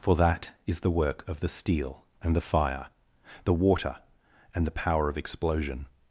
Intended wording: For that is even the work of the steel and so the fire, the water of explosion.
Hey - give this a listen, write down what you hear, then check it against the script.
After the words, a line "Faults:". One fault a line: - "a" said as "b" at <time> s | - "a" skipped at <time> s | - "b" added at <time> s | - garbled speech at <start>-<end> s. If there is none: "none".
For that is the work of the steel and the fire, the water and the power of explosion.
Faults:
- "even" skipped at 0.8 s
- "so" skipped at 2.4 s
- "and the power" added at 4.5 s